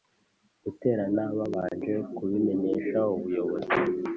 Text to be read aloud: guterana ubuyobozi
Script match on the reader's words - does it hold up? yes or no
no